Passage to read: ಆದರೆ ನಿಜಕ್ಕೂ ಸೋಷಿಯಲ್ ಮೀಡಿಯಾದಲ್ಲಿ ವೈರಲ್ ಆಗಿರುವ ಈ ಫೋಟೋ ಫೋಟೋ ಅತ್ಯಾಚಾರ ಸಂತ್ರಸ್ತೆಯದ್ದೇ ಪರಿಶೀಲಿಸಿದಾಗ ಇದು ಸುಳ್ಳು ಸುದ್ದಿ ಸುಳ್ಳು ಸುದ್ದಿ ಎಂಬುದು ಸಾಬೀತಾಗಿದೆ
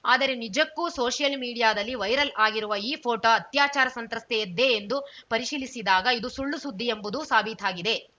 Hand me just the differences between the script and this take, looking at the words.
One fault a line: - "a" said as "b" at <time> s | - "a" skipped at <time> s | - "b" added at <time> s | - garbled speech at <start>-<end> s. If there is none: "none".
- "ಫೋಟೋ" skipped at 3.3 s
- "ಎಂದು" added at 4.7 s
- "ಸುಳ್ಳು ಸುದ್ದಿ" skipped at 6.9 s